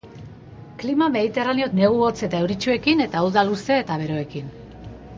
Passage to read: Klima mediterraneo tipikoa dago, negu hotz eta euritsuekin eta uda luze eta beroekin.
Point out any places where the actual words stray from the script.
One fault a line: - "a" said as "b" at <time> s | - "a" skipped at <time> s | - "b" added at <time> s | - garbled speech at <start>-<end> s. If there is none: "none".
- "tipikoa dago" skipped at 1.7 s